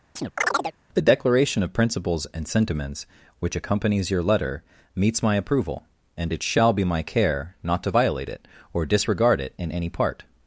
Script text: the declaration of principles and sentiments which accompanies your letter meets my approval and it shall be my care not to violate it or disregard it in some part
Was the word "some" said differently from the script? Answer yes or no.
yes